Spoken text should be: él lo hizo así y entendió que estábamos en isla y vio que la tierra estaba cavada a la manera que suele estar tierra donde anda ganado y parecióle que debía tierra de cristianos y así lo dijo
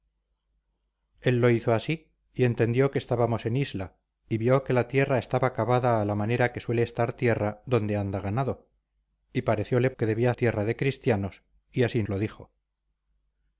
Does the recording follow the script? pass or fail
pass